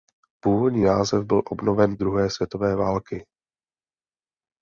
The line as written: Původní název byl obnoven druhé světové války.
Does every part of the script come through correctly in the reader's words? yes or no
yes